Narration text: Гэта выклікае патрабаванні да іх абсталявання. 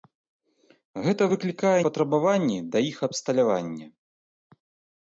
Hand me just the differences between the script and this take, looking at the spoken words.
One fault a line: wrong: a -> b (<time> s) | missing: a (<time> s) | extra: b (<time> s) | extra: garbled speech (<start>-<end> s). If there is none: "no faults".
no faults